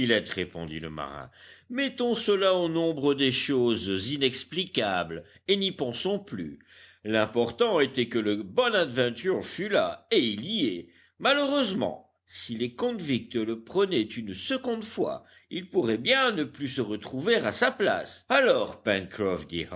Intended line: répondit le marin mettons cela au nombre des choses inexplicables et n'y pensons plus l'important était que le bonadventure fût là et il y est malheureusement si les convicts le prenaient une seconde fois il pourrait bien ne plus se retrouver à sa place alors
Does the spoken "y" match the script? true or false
true